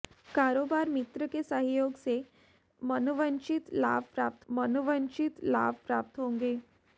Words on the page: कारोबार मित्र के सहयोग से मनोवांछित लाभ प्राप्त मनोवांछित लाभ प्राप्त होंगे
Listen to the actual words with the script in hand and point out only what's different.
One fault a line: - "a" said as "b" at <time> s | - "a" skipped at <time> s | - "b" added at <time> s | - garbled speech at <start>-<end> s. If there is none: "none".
none